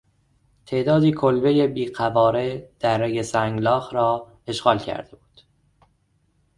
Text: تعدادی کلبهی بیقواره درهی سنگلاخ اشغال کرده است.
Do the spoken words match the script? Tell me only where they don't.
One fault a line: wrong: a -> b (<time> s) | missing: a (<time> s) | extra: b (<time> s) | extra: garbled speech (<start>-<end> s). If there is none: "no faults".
extra: را (3.9 s)
wrong: است -> بود (5.2 s)